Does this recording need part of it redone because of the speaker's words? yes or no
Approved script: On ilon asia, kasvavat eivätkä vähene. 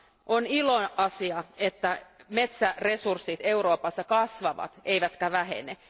yes